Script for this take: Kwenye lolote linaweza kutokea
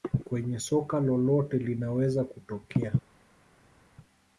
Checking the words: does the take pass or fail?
fail